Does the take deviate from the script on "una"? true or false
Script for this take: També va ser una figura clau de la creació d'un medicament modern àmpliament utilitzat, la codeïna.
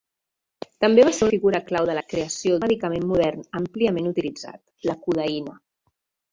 true